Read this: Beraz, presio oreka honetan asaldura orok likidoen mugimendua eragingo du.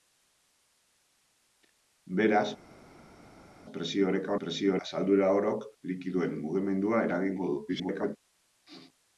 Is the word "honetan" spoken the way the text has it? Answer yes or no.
no